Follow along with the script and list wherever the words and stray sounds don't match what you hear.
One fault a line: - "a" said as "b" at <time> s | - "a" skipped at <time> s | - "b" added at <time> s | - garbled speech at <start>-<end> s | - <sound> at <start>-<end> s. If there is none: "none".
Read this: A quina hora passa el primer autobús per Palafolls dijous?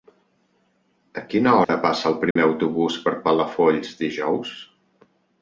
- dropout at 1.6-1.7 s
- dropout at 2.3-2.4 s